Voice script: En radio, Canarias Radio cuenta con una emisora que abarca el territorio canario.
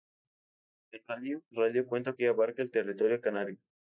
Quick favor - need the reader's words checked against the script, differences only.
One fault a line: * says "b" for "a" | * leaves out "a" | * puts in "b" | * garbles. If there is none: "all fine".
* leaves out "Canarias"
* leaves out "con una emisora"